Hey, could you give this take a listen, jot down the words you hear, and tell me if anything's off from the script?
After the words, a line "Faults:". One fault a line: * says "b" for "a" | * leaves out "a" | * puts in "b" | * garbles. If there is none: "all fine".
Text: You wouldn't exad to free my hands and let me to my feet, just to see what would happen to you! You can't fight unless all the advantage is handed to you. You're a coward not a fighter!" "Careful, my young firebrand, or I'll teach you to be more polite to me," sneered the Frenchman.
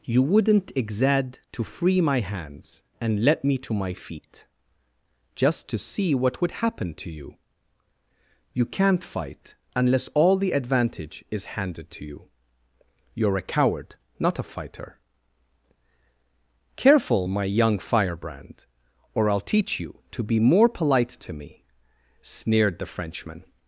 You wouldn't exad to free my hands and let me to my feet, just to see what would happen to you! You can't fight unless all the advantage is handed to you. You're a coward not a fighter!" "Careful, my young firebrand, or I'll teach you to be more polite to me," sneered the Frenchman.
Faults:
all fine